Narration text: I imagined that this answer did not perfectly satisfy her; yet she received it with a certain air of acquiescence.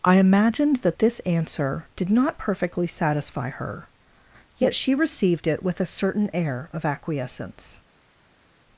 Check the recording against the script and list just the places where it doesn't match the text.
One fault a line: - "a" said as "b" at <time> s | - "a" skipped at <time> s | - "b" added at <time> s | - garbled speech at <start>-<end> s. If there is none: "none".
none